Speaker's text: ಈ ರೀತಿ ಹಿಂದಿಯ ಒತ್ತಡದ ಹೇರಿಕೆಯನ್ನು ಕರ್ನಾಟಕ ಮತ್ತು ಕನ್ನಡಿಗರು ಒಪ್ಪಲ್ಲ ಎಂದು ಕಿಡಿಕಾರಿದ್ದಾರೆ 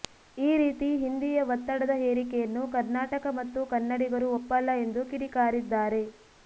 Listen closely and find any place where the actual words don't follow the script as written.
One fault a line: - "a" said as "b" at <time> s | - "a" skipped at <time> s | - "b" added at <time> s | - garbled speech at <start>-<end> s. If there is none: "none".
none